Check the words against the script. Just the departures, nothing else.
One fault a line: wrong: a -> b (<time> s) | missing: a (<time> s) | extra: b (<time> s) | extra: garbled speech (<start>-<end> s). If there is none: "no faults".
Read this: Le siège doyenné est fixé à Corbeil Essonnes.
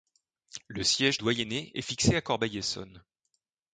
no faults